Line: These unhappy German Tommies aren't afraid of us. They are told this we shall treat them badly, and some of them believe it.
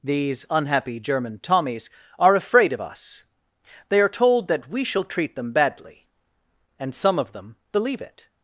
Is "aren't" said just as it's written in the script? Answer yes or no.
no